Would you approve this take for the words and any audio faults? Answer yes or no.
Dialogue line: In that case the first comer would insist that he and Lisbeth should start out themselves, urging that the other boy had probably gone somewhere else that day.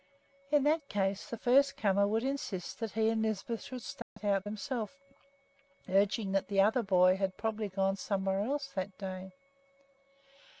no